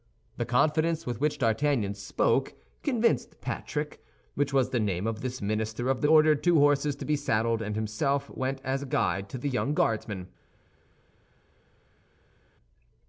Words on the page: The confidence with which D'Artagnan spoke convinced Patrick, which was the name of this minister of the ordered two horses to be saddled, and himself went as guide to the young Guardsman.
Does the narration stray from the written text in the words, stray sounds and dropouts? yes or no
no